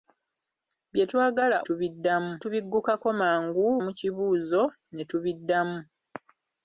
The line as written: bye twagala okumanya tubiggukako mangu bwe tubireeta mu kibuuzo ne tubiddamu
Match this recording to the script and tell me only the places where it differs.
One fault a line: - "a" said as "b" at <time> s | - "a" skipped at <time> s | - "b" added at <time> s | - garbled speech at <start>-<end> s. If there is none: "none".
- "okumanya" said as "tubiddamu" at 1.7 s
- "bwe tubireeta" skipped at 3.7 s